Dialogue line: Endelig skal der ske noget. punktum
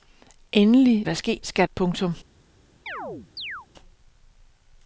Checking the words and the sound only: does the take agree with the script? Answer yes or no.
no